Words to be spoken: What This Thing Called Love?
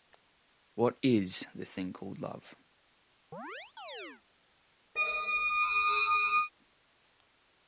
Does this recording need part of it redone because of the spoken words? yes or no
yes